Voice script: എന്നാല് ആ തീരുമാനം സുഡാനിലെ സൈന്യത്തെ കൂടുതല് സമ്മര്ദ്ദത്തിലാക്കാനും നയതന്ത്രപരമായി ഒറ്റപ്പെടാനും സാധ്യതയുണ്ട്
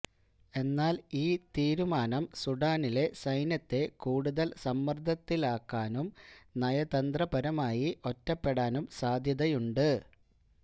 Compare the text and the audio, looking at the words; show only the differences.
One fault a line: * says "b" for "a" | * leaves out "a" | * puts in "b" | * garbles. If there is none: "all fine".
* says "ഈ" for "ആ"